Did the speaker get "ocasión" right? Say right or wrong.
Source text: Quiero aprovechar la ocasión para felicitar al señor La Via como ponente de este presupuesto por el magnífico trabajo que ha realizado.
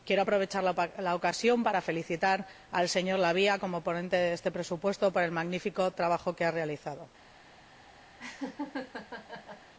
right